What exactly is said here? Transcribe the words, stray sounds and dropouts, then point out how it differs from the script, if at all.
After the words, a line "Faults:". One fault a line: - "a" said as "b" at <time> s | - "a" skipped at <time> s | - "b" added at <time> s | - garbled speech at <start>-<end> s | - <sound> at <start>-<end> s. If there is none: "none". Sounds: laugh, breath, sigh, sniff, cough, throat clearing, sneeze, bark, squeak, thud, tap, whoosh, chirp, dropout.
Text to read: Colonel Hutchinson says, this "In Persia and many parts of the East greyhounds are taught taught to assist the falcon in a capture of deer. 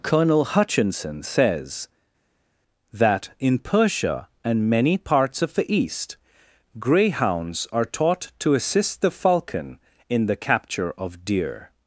Colonel Hutchinson says, that "In Persia and many parts of the East greyhounds are taught to assist the falcon in the capture of deer.
Faults:
- "this" said as "that" at 2.9 s
- "taught" skipped at 8.3 s
- "a" said as "the" at 10.3 s